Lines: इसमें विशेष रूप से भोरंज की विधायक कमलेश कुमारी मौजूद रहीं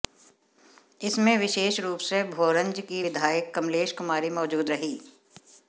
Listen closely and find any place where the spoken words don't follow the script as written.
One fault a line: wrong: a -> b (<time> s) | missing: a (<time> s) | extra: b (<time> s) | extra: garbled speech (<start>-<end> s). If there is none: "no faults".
no faults